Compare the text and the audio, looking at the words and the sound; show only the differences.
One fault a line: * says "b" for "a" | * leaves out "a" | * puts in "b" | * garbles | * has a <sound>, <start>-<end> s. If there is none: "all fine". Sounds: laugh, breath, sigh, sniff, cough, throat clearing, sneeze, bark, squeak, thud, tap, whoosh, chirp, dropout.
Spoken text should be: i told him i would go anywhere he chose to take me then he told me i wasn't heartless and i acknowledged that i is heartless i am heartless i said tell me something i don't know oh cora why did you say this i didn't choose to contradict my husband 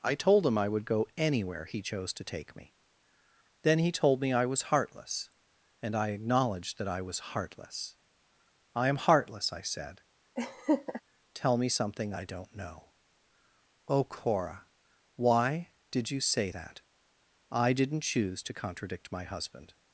* says "was" for "wasn't"
* says "was" for "is"
* has a laugh, 10.4-11.0 s
* says "that" for "this"